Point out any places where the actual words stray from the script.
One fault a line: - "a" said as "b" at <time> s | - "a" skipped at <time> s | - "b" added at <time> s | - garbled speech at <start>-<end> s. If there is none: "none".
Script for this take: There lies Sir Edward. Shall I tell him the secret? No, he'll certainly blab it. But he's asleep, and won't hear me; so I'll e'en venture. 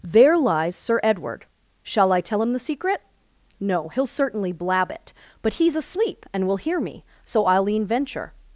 - "won't" said as "will" at 6.5 s